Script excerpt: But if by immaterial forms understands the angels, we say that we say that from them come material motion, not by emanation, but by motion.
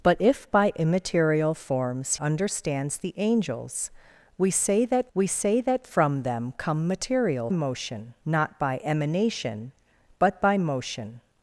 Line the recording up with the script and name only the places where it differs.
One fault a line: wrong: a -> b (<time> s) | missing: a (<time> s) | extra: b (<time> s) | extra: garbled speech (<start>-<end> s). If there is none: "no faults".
no faults